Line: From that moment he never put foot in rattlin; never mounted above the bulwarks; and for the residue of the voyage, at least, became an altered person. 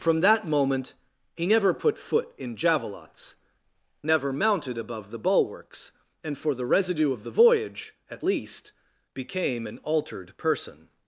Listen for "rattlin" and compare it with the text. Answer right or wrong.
wrong